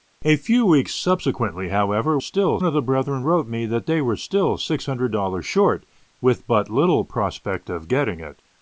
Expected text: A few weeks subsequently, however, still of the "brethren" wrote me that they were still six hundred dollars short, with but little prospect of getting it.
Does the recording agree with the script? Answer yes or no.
yes